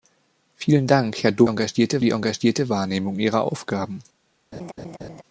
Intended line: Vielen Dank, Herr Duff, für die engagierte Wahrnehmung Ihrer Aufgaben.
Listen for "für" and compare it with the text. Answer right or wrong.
wrong